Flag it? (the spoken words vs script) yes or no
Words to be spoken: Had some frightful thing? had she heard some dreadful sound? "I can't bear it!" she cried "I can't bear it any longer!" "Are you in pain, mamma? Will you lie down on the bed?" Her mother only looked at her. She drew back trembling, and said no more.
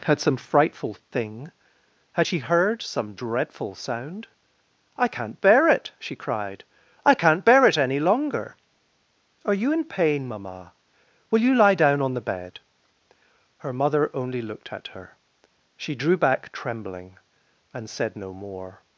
no